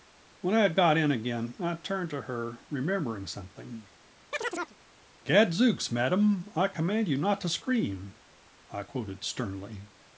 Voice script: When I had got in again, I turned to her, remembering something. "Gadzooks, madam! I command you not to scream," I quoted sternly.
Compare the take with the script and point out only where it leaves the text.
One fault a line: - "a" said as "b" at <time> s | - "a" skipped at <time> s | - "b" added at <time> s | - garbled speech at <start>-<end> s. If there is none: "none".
none